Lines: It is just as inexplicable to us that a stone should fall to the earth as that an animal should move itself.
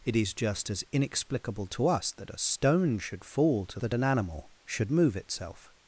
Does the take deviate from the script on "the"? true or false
true